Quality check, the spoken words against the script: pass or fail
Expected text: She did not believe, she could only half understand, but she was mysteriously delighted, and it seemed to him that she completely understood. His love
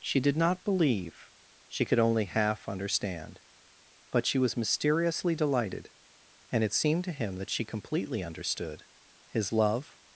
pass